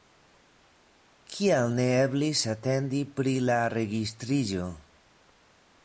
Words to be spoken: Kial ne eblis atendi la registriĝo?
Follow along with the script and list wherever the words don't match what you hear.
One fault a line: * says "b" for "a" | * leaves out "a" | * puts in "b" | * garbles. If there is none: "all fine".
* puts in "pri"